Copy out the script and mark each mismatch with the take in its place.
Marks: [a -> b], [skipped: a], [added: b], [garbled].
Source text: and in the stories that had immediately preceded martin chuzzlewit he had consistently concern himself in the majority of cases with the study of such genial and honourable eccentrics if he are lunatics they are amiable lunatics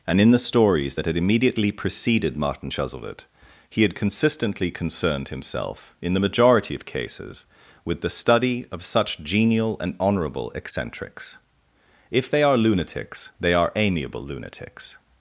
and in the stories that had immediately preceded martin chuzzlewit he had consistently [concern -> concerned] himself in the majority of cases with the study of such genial and honourable eccentrics if [he -> they] are lunatics they are amiable lunatics